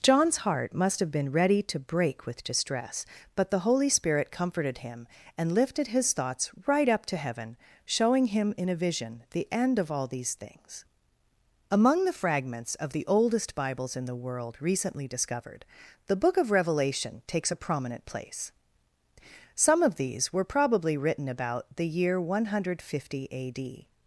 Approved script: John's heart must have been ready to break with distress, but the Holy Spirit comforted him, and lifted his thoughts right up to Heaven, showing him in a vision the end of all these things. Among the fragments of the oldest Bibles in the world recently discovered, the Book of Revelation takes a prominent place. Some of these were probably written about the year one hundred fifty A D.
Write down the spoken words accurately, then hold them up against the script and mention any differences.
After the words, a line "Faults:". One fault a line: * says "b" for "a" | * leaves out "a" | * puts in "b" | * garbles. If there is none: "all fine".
John's heart must have been ready to break with distress, but the Holy Spirit comforted him, and lifted his thoughts right up to Heaven, showing him in a vision the end of all these things. Among the fragments of the oldest Bibles in the world recently discovered, the Book of Revelation takes a prominent place. Some of these were probably written about the year one hundred fifty A D.
Faults:
all fine